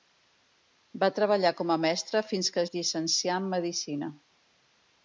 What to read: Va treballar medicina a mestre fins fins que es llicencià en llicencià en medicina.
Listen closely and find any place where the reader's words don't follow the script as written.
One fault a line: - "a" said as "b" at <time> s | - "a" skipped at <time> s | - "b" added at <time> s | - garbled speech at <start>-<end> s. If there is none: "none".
- "medicina" said as "com" at 1.6 s
- "fins" skipped at 2.5 s
- "llicencià en" skipped at 3.5 s